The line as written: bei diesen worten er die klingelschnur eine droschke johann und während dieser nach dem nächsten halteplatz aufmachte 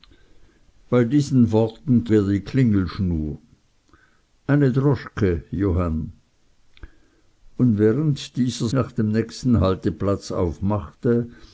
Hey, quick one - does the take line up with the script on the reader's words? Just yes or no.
yes